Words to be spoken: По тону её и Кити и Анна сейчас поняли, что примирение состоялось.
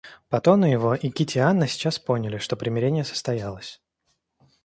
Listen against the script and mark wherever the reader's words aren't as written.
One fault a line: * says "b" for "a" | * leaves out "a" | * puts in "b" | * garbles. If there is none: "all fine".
* says "его" for "её"